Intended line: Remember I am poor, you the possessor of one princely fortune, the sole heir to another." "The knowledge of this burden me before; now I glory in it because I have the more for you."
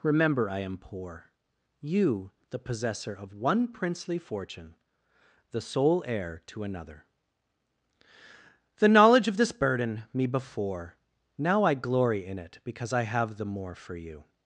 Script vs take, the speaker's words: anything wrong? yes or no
no